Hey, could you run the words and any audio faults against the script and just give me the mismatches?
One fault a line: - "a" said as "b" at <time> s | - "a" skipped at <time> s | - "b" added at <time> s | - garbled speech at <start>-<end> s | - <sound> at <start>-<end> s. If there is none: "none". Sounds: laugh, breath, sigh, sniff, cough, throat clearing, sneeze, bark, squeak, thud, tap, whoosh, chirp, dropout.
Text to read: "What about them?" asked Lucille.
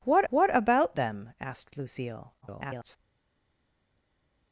- "what" added at 0.3 s
- garbled speech at 2.4-3.0 s